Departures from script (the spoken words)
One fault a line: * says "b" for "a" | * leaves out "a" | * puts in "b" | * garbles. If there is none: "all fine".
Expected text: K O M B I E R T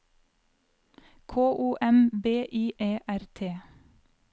all fine